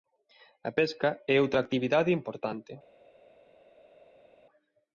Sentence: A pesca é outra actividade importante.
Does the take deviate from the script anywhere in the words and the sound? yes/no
no